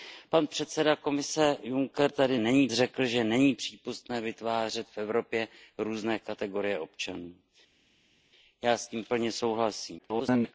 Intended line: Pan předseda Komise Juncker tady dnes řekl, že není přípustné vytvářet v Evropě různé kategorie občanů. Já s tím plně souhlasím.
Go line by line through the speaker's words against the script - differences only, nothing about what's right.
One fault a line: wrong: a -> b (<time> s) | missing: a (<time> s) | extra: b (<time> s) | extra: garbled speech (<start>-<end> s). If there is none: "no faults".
wrong: dnes -> není (2.4 s)
extra: garbled speech (10.0-10.5 s)